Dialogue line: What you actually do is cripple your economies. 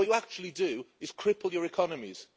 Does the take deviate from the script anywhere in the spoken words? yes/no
no